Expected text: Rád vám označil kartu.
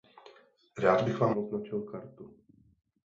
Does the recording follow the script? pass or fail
fail